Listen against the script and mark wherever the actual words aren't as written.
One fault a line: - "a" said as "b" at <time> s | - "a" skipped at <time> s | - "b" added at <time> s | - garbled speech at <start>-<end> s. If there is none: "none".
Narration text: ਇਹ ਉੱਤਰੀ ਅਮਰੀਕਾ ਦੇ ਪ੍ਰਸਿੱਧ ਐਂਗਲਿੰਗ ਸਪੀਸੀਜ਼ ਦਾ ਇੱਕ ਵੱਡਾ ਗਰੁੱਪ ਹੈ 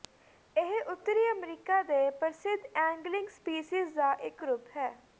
- "ਵੱਡਾ" skipped at 4.4 s